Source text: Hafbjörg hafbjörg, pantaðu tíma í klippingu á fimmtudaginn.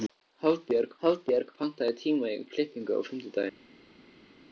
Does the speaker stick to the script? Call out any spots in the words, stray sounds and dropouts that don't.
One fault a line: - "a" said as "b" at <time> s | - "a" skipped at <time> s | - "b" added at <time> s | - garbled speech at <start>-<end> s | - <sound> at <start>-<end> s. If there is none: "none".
none